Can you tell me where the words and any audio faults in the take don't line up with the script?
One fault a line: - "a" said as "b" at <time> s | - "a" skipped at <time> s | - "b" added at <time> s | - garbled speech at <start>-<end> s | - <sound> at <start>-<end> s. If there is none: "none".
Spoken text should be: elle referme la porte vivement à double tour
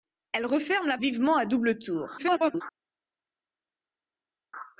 - "porte" skipped at 1.0 s
- garbled speech at 2.2-2.6 s